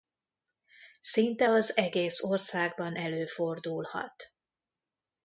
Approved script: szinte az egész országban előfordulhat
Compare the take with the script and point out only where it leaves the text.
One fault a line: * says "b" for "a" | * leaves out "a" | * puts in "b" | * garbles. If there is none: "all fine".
all fine